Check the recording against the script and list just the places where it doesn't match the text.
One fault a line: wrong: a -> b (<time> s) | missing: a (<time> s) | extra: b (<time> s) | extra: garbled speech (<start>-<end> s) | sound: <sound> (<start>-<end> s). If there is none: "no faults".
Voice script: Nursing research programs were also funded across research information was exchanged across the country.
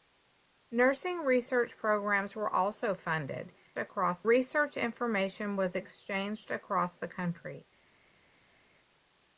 no faults